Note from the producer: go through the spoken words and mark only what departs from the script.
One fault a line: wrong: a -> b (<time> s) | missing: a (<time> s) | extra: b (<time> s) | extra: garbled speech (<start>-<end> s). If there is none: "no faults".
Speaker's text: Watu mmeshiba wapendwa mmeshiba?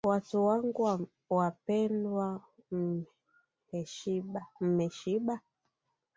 wrong: mmeshiba -> wangu (0.5 s)